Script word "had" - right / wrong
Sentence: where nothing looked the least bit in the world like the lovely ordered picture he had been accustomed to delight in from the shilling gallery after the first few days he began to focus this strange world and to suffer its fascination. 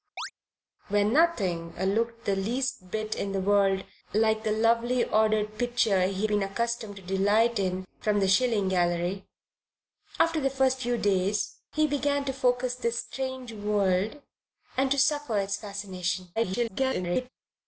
wrong